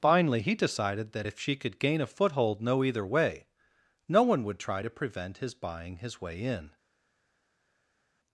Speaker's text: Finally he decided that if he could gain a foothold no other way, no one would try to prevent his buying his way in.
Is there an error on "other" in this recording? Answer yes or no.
yes